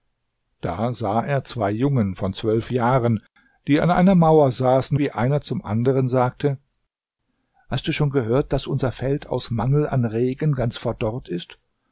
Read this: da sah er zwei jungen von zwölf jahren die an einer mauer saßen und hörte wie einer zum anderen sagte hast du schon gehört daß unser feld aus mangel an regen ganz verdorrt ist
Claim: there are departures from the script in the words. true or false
true